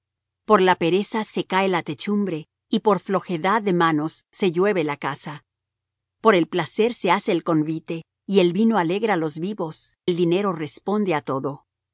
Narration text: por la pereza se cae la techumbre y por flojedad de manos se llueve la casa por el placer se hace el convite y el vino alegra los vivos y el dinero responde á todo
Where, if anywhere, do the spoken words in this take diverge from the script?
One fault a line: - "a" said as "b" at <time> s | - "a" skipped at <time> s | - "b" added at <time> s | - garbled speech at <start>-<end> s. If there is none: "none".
- "y" skipped at 10.0 s